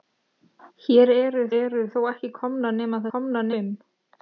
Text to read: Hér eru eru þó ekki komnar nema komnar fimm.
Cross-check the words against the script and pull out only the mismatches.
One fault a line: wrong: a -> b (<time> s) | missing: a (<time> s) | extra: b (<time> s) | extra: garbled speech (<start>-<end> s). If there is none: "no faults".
no faults